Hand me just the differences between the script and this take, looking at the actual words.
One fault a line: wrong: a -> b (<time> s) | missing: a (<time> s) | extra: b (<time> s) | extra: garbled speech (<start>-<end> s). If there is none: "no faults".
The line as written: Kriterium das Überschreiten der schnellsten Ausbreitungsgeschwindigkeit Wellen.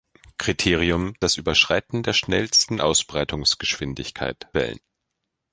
no faults